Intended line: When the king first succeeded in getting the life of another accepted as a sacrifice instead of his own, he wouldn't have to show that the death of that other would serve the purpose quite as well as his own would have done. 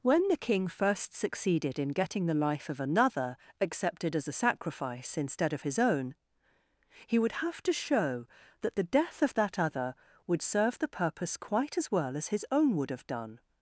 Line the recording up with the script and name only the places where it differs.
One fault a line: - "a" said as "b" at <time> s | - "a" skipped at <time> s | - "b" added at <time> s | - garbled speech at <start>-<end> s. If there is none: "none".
- "wouldn't" said as "would" at 7.2 s